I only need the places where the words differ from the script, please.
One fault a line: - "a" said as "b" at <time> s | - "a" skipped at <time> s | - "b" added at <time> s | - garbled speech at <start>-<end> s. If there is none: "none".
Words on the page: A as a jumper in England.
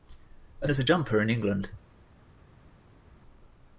none